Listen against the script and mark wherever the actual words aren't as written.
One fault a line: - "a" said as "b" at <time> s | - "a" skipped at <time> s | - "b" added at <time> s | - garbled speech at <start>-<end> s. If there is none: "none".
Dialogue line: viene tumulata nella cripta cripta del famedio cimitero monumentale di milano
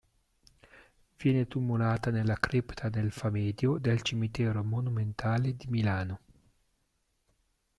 - "cripta" skipped at 2.9 s
- "del" added at 3.7 s